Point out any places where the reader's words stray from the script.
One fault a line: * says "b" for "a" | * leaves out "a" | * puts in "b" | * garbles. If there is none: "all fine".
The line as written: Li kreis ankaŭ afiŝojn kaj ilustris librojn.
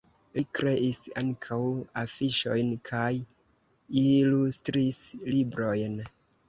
all fine